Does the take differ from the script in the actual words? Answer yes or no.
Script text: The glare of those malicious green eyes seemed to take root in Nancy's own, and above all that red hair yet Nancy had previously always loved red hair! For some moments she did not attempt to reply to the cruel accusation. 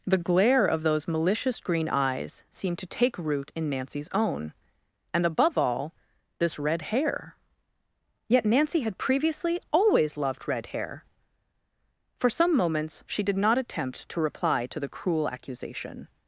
yes